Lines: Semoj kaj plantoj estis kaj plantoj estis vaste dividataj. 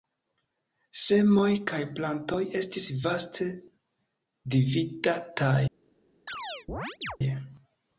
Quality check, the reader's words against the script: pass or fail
fail